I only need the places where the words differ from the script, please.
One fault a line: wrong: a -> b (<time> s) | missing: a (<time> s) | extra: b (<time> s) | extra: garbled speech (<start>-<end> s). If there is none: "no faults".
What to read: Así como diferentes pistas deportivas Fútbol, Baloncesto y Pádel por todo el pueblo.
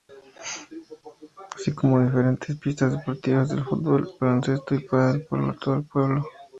extra: de (3.5 s)